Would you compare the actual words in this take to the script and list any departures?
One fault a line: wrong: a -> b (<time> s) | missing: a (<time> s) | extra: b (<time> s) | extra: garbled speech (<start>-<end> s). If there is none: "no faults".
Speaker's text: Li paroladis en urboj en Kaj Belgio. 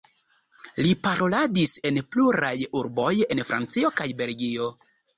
extra: pluraj (2.1 s)
extra: Francio (3.5 s)